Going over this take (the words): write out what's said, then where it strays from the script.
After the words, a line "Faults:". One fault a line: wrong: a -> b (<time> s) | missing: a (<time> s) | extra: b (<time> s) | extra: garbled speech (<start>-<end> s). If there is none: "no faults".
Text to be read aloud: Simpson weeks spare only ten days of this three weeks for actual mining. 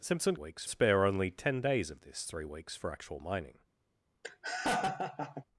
Simpson weeks spare only ten days of this three weeks for actual mining.
Faults:
no faults